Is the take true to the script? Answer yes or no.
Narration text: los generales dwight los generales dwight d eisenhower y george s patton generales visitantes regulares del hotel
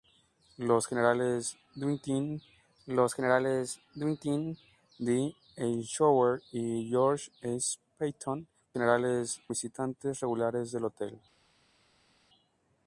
yes